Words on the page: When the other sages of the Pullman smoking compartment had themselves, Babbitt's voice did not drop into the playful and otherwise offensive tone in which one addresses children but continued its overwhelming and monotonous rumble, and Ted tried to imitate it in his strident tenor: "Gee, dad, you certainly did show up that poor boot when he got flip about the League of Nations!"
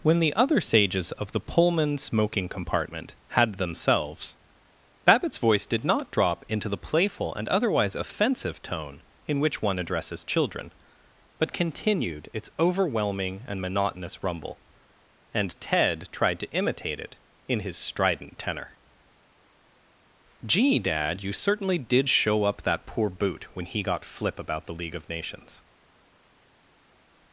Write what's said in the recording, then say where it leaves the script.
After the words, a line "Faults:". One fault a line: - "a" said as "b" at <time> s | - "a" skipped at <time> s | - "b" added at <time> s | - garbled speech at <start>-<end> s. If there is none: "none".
When the other sages of the Pullman smoking compartment had themselves, Babbitt's voice did not drop into the playful and otherwise offensive tone in which one addresses children but continued its overwhelming and monotonous rumble, and Ted tried to imitate it in his strident tenor: "Gee, dad, you certainly did show up that poor boot when he got flip about the League of Nations!"
Faults:
none